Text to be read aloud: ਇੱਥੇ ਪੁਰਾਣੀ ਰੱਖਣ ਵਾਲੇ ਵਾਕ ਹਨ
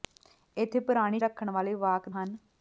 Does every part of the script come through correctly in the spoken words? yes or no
yes